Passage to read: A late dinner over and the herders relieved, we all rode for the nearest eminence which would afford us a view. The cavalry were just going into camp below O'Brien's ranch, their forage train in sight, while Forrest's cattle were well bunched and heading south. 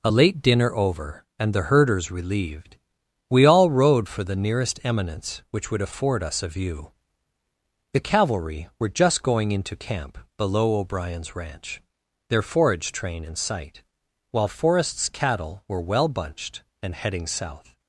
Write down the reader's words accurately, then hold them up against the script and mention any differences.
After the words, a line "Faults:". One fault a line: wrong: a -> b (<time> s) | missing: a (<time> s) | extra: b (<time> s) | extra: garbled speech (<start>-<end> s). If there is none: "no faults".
A late dinner over and the herders relieved, we all rode for the nearest eminence which would afford us a view. The cavalry were just going into camp below O'Brien's ranch, their forage train in sight, while Forrest's cattle were well bunched and heading south.
Faults:
no faults